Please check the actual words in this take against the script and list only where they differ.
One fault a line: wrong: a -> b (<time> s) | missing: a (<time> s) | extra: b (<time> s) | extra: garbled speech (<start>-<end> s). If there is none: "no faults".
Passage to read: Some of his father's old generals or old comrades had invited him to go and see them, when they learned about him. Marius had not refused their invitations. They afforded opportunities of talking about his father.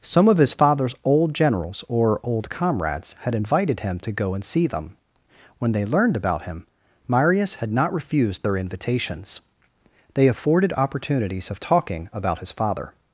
no faults